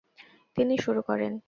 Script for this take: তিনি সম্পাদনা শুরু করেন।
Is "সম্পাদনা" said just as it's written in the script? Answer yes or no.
no